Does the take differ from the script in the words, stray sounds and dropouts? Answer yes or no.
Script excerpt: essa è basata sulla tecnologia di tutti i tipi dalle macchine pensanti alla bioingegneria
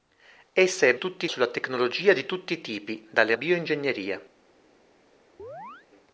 yes